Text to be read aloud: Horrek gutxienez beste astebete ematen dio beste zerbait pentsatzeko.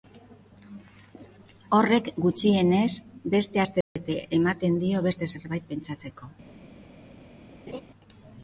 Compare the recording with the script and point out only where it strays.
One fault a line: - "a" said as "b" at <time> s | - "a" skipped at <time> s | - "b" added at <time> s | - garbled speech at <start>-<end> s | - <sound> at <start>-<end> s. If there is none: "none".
- dropout at 3.8-4.0 s
- laugh at 7.7-7.8 s